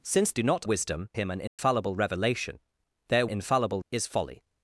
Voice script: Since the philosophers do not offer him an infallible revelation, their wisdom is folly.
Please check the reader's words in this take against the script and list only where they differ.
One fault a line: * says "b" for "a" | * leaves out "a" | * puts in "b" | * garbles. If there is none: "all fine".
* leaves out "the philosophers"
* says "wisdom" for "offer"
* says "infallible" for "wisdom"